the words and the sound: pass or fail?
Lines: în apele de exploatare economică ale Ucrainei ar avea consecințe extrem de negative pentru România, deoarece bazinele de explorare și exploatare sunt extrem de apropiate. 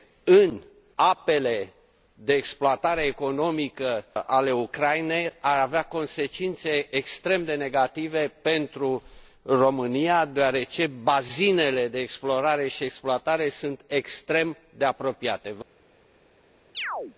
fail